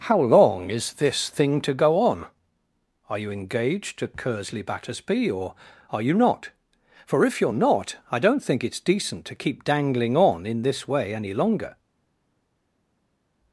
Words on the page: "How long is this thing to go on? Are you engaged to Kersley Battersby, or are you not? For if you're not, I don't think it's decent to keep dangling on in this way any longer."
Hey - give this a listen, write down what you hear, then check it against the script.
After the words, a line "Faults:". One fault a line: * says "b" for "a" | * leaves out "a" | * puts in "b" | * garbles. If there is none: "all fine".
"How long is this thing to go on? Are you engaged to Kersley Battersby, or are you not? For if you're not, I don't think it's decent to keep dangling on in this way any longer."
Faults:
all fine